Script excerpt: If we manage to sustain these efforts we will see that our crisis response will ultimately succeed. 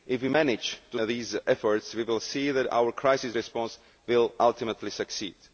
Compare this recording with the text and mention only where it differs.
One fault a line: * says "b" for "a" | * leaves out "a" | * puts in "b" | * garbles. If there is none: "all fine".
* leaves out "sustain"